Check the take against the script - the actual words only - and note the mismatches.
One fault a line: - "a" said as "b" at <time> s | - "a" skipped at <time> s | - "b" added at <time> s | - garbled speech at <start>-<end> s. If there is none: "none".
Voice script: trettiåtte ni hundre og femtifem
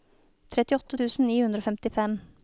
- "tusen" added at 1.0 s